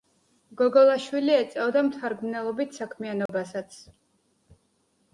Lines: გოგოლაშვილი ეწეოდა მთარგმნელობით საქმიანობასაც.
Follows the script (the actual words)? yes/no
yes